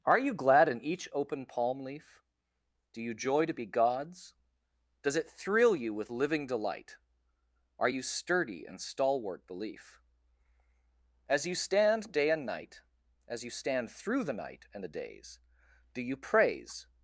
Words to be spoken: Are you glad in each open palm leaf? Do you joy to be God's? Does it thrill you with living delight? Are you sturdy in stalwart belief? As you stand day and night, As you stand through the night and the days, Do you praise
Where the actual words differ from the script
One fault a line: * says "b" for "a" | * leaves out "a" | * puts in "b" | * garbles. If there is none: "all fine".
all fine